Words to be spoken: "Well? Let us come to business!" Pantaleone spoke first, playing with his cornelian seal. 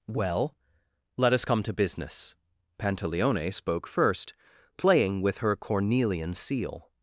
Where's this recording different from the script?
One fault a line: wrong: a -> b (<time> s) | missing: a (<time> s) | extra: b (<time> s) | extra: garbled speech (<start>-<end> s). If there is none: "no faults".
wrong: his -> her (5.4 s)